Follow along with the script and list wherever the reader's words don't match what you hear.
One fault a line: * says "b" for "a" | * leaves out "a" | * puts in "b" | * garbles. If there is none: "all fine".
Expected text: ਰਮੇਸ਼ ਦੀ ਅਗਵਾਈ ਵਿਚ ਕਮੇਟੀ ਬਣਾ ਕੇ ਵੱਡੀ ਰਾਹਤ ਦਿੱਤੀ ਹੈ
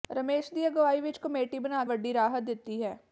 * leaves out "ਕੇ"